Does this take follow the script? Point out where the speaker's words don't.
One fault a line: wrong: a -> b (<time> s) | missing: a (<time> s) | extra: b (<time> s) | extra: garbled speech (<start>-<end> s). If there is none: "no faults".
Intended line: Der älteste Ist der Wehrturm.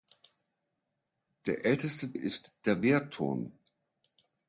no faults